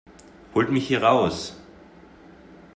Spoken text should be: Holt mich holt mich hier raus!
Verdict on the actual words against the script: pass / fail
fail